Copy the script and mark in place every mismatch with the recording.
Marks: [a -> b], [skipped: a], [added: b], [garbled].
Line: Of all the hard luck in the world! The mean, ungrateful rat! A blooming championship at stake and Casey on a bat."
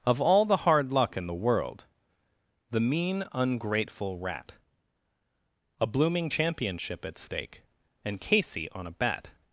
Of all the hard luck in the world! The mean, ungrateful rat! A blooming championship at stake and Casey on a bat."